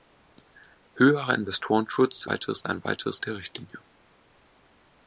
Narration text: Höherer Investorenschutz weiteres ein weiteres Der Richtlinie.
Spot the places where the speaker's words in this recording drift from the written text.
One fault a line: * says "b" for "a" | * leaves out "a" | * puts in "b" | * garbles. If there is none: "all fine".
all fine